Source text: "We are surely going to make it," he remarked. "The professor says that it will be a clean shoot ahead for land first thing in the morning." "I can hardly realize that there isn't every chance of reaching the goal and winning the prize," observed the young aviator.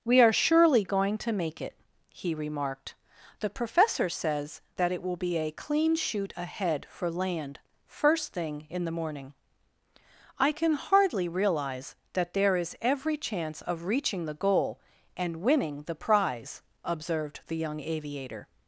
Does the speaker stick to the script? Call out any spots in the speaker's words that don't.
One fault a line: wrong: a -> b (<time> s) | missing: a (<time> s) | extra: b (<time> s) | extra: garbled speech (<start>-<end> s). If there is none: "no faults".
wrong: isn't -> is (12.5 s)